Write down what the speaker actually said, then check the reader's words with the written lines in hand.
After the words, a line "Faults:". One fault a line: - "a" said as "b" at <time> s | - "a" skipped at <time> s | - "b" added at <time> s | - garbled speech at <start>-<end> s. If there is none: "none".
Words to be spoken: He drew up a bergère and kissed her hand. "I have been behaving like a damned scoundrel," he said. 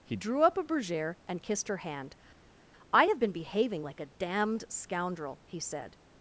He drew up a bergère and kissed her hand. "I have been behaving like a damned scoundrel," he said.
Faults:
none